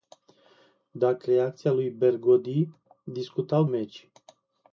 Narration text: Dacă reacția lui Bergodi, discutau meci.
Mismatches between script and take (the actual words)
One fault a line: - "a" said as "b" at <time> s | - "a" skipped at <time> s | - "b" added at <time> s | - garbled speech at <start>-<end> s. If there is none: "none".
none